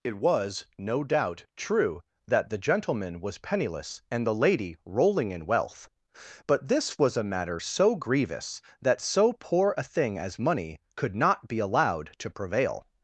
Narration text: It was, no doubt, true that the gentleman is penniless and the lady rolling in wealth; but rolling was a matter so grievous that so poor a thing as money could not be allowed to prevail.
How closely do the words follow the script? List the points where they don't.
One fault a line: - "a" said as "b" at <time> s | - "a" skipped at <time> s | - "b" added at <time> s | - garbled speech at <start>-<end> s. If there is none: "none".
- "is" said as "was" at 3.2 s
- "rolling" said as "this" at 6.7 s